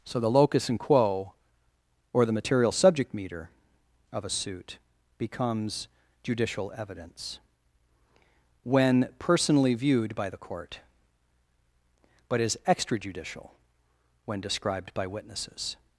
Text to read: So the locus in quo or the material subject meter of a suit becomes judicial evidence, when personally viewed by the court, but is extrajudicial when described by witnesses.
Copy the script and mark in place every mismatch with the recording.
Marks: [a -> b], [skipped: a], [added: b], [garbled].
So the locus in quo or the material subject meter of a suit becomes judicial evidence, when personally viewed by the court, but is extrajudicial when described by witnesses.